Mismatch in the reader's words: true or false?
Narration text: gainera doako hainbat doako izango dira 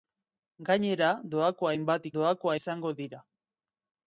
false